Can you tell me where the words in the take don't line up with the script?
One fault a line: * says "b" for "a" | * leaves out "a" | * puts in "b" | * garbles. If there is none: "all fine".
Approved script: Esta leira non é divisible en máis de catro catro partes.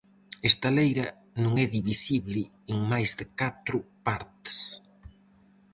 * leaves out "catro"